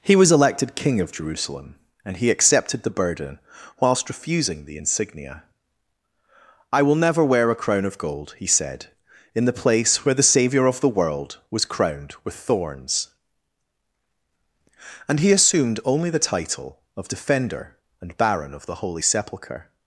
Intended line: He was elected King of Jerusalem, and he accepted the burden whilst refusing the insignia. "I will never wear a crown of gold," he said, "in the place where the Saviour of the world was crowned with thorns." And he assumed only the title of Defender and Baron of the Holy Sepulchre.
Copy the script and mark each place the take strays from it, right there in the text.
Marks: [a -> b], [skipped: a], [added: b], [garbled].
He was elected King of Jerusalem, and he accepted the burden whilst refusing the insignia. "I will never wear a crown of gold," he said, "in the place where the Saviour of the world was crowned with thorns." And he assumed only the title of Defender and Baron of the Holy Sepulchre.